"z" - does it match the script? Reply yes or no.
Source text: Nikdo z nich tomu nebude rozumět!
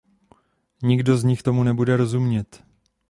yes